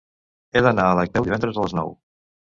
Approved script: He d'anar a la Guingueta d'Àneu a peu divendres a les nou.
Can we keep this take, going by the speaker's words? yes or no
no